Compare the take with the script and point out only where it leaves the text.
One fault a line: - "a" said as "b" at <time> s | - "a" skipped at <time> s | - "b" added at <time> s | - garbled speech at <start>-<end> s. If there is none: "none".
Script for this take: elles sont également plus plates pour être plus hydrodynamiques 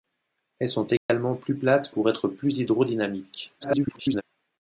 - garbled speech at 3.6-4.2 s